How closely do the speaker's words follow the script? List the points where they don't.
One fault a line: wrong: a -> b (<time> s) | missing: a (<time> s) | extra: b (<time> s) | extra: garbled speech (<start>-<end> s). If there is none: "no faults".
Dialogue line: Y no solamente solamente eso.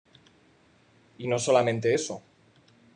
missing: solamente (1.9 s)